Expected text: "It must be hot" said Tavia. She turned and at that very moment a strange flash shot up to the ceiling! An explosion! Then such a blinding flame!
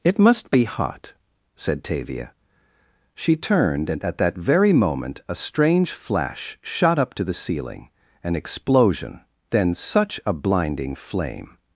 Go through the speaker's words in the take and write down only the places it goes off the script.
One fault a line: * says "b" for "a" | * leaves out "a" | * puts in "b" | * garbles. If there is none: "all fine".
all fine